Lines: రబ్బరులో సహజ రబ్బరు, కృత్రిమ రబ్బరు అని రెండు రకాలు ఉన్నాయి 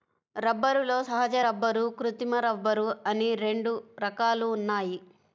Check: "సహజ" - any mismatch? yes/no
no